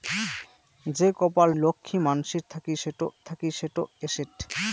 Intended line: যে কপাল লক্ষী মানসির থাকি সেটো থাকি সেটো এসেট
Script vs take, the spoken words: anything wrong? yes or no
no